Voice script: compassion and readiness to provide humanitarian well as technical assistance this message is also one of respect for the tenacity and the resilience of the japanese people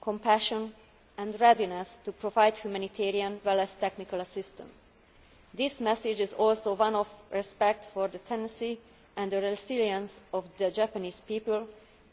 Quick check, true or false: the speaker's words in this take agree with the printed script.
true